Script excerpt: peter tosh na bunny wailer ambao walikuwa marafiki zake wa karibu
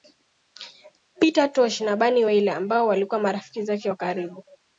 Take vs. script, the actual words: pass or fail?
pass